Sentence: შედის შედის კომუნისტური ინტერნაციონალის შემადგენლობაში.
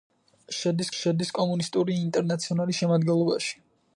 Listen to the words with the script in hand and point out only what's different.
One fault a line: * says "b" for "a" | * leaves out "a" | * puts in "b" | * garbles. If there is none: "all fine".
all fine